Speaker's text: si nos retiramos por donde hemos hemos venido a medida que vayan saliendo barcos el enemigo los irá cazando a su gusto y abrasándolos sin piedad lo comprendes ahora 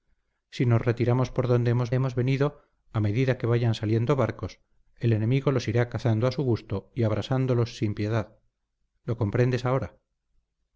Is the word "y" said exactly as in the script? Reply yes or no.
yes